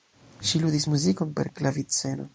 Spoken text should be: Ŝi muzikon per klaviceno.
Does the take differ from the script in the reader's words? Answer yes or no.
yes